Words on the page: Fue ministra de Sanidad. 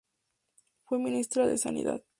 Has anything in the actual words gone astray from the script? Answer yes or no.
no